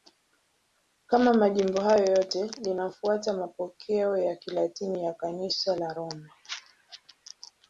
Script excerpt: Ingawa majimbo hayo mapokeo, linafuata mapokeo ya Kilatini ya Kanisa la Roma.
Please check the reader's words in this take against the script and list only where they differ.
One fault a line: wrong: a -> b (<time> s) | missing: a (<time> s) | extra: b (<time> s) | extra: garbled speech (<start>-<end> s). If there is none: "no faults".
wrong: Ingawa -> Kama (1.1 s)
wrong: mapokeo -> yote (2.0 s)